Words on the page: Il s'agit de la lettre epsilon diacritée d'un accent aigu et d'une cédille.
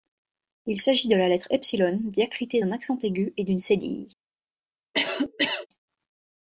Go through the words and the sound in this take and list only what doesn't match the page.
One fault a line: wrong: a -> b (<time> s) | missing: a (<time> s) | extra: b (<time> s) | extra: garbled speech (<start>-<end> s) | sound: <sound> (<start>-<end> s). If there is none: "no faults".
sound: cough (4.9-5.7 s)